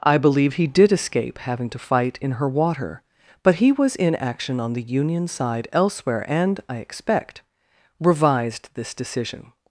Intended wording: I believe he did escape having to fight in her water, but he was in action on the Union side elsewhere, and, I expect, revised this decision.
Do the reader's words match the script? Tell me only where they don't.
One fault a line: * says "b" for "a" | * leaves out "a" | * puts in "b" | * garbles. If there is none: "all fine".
all fine